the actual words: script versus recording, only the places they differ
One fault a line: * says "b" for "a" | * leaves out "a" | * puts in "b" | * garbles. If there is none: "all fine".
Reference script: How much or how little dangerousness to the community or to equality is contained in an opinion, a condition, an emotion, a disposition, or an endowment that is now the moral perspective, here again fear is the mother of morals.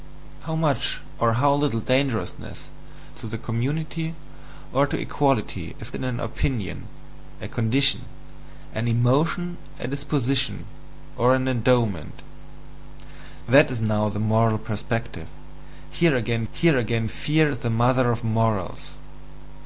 * leaves out "contained"
* puts in "here again"